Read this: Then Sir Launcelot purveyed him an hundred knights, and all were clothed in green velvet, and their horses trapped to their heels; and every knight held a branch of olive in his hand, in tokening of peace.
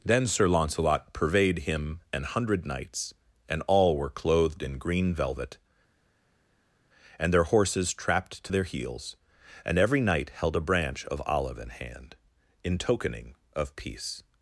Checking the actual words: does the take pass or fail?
fail